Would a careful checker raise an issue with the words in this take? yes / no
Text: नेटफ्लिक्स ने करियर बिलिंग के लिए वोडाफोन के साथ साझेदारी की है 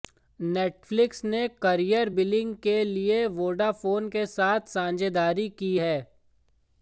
no